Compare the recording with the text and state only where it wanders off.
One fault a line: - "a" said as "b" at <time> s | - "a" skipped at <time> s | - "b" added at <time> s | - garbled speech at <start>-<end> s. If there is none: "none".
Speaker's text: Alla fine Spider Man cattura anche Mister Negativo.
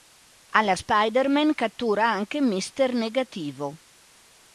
- "fine" skipped at 0.8 s